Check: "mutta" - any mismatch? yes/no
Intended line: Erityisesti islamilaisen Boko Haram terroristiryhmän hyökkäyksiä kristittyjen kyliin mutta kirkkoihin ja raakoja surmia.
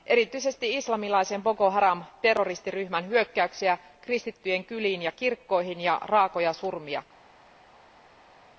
yes